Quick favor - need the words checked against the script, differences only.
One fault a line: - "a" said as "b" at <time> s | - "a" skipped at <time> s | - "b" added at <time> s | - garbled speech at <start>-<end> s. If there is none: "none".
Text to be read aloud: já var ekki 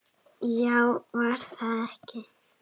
- "það" added at 1.5 s